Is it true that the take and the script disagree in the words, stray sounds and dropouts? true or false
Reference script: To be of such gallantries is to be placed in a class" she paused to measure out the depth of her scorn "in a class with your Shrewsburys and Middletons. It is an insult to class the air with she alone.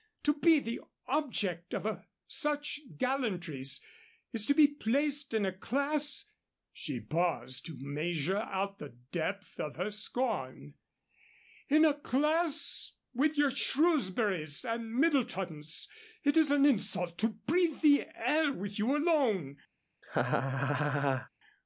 true